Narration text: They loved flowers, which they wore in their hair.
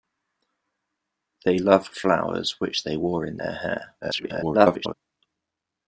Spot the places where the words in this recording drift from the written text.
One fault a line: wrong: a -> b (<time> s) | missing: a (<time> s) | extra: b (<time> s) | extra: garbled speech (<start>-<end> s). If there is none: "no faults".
extra: garbled speech (4.0-4.9 s)